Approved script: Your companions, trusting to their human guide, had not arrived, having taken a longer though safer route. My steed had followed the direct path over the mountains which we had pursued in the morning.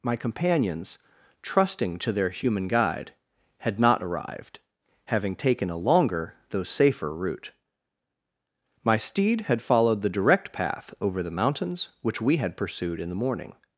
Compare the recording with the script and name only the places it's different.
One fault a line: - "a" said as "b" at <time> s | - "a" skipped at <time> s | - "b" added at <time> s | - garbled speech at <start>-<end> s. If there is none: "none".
- "Your" said as "My" at 0.0 s